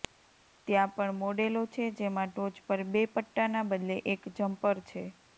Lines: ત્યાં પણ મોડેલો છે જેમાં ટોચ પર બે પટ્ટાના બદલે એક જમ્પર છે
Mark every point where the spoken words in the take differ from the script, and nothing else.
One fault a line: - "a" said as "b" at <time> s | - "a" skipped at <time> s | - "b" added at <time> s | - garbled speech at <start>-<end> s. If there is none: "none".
none